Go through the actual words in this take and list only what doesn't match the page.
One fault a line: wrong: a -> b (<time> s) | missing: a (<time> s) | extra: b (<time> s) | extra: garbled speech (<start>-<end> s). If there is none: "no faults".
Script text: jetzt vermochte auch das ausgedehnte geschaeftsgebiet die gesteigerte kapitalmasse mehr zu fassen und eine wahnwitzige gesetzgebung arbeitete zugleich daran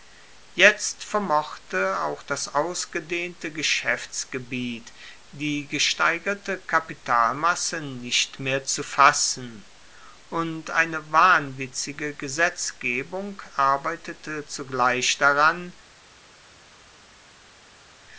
extra: nicht (7.8 s)